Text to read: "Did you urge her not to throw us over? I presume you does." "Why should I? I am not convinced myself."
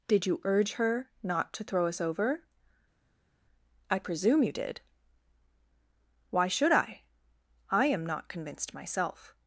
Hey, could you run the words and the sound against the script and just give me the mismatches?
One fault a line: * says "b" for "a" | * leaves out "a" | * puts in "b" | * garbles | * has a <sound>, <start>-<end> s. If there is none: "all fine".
* says "did" for "does"